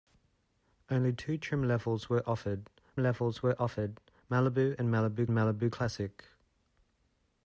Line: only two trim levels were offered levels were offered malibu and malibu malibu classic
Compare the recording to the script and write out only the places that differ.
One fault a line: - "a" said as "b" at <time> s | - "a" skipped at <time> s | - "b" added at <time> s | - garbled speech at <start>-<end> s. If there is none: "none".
none